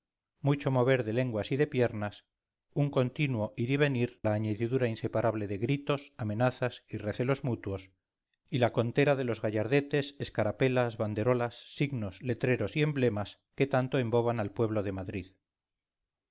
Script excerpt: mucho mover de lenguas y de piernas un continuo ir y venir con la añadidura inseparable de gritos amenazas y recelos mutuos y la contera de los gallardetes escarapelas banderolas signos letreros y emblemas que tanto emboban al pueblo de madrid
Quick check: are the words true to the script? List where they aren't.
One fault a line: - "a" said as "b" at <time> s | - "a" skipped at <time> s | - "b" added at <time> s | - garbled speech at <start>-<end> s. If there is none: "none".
- "con" skipped at 4.2 s